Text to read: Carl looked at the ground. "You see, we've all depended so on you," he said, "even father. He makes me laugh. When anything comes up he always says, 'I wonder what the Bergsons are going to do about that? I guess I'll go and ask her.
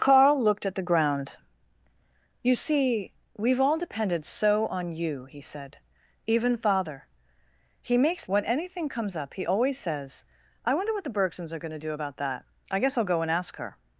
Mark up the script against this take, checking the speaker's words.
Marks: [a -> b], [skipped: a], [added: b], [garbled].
Carl looked at the ground. "You see, we've all depended so on you," he said, "even father. He makes [skipped: me laugh.] When anything comes up he always says, 'I wonder what the Bergsons are going to do about that? I guess I'll go and ask her.